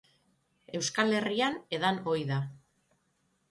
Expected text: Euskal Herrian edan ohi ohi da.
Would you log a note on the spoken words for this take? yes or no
yes